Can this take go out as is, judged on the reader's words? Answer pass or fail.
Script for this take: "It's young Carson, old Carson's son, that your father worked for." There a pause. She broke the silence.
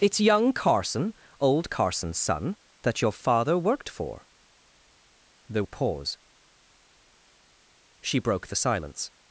pass